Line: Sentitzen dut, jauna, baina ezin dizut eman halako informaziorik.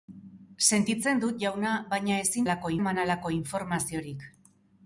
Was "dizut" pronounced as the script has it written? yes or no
no